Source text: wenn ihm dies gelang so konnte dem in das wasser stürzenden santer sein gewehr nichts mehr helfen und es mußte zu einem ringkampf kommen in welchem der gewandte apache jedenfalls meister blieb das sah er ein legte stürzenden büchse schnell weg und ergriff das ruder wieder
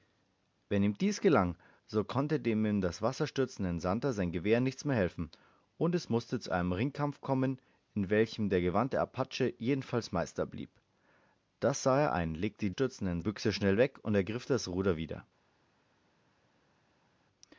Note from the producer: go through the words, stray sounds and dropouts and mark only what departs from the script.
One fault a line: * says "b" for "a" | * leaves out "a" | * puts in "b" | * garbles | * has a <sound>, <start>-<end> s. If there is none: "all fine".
all fine